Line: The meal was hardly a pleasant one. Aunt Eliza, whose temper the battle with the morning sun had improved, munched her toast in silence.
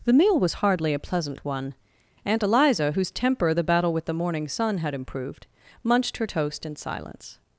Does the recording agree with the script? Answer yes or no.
yes